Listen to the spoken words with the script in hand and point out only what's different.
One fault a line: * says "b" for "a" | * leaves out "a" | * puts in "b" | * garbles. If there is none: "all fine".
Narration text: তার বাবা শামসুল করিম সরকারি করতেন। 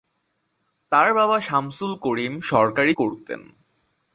all fine